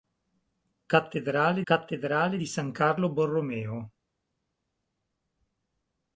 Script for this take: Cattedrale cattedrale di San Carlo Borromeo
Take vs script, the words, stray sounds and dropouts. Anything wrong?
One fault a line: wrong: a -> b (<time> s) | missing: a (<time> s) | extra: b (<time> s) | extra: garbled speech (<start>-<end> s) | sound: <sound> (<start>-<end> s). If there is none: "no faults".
no faults